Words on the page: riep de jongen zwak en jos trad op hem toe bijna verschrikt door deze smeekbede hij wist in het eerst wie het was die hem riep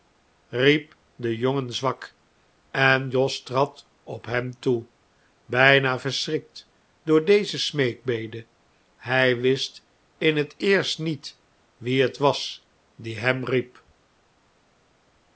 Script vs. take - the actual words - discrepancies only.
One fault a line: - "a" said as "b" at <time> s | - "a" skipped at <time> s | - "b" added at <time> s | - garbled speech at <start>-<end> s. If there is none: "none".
- "niet" added at 11.0 s